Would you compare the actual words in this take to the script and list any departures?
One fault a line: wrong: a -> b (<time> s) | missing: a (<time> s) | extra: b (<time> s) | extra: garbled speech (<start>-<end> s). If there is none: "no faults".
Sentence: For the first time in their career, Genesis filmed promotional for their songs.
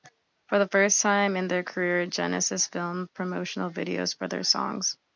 extra: videos (3.7 s)